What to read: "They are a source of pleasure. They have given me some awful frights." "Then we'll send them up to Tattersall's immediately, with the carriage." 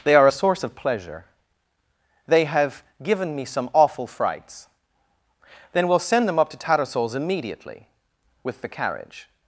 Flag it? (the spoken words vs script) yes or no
no